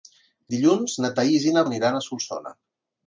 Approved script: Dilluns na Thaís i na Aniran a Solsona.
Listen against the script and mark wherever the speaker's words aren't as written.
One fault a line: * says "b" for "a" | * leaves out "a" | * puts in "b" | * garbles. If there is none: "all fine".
all fine